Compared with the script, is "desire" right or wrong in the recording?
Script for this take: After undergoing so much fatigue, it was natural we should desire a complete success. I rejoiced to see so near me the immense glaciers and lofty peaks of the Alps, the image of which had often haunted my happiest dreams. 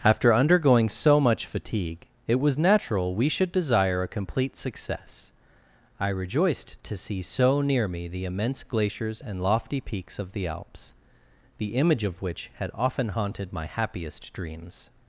right